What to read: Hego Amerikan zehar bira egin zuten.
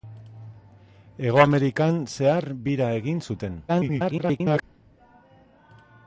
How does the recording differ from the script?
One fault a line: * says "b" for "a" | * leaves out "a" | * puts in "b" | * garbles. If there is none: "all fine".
* garbles